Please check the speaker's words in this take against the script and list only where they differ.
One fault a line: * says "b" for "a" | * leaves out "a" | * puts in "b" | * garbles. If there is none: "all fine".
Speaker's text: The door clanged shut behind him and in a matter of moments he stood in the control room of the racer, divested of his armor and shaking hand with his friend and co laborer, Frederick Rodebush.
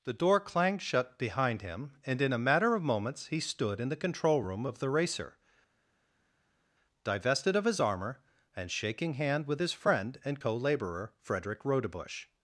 all fine